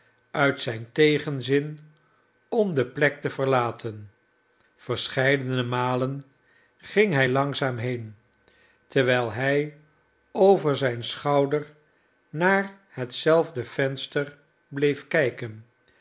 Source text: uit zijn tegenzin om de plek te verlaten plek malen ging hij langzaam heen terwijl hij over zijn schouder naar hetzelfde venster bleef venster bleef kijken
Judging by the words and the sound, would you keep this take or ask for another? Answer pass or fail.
fail